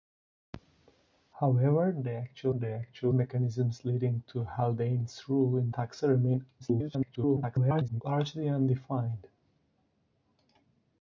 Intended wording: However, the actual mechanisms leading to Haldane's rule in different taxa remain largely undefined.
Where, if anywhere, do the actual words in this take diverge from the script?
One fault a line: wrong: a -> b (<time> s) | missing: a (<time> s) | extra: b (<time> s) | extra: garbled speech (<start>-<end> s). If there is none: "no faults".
extra: the actual (2.5 s)
missing: different (5.7 s)
extra: garbled speech (6.6-8.0 s)